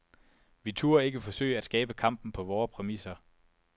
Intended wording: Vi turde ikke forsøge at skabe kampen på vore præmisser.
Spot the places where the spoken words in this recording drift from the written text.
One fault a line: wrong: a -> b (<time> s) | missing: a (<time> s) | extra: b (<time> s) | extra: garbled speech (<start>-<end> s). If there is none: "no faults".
no faults